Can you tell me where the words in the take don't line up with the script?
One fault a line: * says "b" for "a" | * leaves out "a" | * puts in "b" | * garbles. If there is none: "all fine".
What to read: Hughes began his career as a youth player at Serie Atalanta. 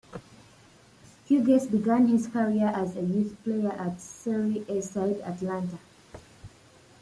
* puts in "A side"